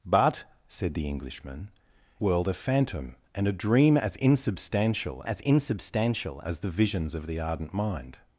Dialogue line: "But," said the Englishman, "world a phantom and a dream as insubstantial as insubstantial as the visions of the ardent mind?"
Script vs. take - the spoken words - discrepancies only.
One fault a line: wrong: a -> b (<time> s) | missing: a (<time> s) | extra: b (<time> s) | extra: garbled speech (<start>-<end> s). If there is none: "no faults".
no faults